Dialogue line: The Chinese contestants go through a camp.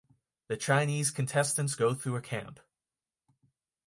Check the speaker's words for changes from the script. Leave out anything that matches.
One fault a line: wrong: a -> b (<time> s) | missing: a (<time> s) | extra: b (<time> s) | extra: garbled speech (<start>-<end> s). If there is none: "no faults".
no faults